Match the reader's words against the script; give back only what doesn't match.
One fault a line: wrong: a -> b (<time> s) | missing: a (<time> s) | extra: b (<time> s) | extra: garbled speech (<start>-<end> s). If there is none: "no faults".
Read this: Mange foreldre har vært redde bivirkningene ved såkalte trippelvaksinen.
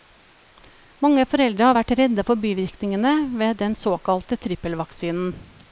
extra: for (2.3 s)
extra: den (3.6 s)